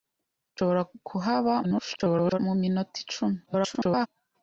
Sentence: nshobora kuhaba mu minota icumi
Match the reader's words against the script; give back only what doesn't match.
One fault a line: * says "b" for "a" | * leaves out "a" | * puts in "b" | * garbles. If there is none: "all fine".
* garbles
* garbles